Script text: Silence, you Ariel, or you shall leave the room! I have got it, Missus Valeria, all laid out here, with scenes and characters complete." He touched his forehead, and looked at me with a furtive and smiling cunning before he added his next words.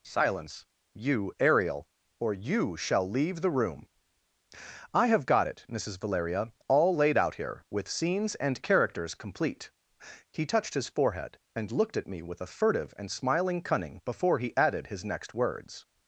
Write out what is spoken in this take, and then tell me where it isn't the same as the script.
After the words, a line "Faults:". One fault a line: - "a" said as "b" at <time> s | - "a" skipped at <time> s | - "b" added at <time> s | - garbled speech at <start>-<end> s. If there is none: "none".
Silence, you Ariel, or you shall leave the room! I have got it, Missus Valeria, all laid out here, with scenes and characters complete." He touched his forehead, and looked at me with a furtive and smiling cunning before he added his next words.
Faults:
none